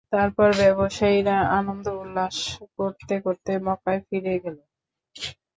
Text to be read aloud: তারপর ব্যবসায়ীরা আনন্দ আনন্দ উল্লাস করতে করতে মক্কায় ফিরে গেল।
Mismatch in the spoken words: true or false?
true